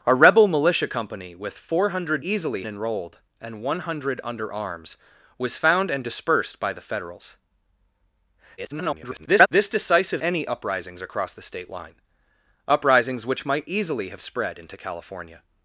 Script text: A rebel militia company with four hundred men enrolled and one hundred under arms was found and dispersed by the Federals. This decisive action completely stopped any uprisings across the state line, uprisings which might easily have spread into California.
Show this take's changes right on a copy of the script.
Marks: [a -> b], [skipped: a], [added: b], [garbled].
A rebel militia company with four hundred [men -> easily] enrolled and one hundred under arms was found and dispersed by the Federals. [garbled] This decisive [skipped: action completely stopped] any uprisings across the state line, uprisings which might easily have spread into California.